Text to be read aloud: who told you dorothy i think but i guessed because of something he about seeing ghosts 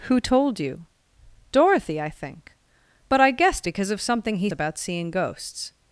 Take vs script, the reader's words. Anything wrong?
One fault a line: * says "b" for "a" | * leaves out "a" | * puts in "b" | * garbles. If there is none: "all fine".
all fine